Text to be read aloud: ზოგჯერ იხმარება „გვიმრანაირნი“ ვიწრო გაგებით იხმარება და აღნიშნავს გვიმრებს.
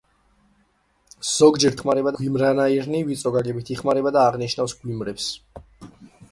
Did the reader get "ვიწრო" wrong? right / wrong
right